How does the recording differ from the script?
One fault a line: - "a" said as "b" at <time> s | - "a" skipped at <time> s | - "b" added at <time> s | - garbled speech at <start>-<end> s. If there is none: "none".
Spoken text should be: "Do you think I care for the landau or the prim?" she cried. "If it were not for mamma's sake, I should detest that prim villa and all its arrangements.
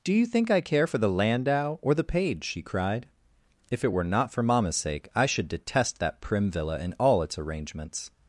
- "prim" said as "page" at 2.0 s